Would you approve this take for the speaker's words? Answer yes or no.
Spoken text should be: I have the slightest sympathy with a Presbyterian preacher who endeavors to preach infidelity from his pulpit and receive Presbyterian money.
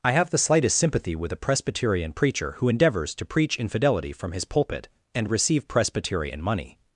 yes